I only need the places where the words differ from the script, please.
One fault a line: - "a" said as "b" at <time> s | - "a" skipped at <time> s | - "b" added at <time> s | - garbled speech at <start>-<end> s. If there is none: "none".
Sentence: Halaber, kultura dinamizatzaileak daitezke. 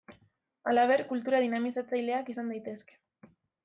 - "izan" added at 2.3 s